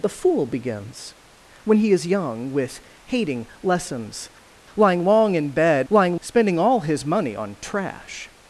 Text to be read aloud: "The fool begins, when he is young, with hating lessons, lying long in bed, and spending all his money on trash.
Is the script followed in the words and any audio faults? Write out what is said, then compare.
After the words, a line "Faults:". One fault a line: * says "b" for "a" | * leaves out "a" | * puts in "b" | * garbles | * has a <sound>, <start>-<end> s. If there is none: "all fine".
"The fool begins, when he is young, with hating lessons, lying long in bed, lying spending all his money on trash.
Faults:
* says "lying" for "and"